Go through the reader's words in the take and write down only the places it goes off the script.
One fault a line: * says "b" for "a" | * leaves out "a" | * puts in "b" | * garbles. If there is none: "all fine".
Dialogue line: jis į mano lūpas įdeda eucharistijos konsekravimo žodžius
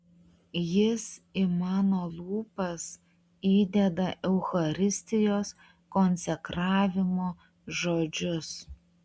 all fine